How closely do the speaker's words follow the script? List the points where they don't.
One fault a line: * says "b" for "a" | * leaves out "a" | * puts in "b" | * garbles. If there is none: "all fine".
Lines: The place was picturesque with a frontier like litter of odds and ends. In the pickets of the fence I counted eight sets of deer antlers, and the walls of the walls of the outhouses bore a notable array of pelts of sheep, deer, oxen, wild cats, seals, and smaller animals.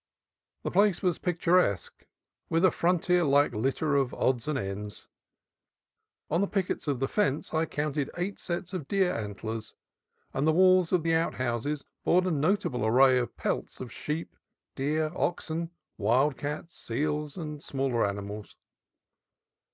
* says "On" for "In"
* leaves out "walls of the"